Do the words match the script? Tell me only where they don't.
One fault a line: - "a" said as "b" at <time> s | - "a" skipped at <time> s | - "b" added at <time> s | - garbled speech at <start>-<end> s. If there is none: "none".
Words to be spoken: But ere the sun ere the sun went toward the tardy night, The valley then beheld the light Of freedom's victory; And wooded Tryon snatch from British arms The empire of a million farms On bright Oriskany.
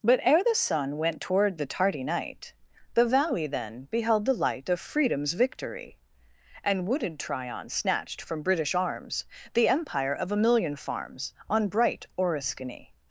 - "ere the sun" skipped at 1.0 s
- "snatch" said as "snatched" at 7.7 s